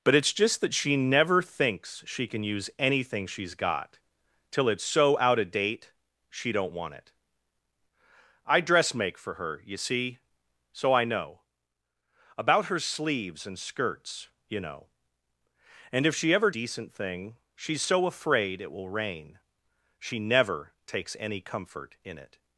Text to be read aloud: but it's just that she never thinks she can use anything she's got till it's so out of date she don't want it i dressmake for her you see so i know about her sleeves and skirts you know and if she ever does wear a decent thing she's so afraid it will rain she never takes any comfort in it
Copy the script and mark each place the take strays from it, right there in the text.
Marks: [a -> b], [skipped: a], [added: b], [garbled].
but it's just that she never thinks she can use anything she's got till it's so out of date she don't want it i dressmake for her you see so i know about her sleeves and skirts you know and if she ever [skipped: does wear a] decent thing she's so afraid it will rain she never takes any comfort in it